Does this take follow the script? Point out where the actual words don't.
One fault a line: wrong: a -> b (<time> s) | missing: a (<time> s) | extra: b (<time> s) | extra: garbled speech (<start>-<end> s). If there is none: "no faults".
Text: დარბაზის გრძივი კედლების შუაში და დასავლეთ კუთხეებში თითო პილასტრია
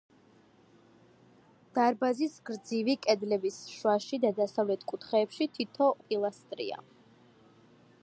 no faults